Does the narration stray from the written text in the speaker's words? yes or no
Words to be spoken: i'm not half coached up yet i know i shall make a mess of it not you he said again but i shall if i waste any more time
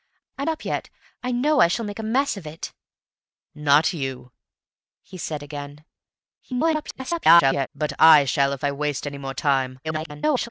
yes